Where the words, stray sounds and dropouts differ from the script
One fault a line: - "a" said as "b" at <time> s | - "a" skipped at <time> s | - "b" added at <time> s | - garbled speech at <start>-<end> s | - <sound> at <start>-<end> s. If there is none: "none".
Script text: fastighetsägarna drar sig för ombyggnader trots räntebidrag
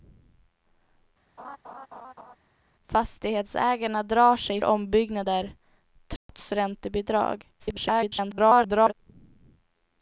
- laugh at 1.4-2.4 s
- "för" skipped at 4.6 s
- dropout at 6.2-6.3 s
- garbled speech at 7.6-8.9 s